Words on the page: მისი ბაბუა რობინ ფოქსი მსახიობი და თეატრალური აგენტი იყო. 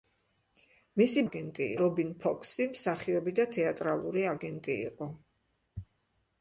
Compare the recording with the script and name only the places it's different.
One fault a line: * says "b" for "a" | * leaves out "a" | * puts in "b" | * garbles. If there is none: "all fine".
* says "აგენტი" for "ბაბუა"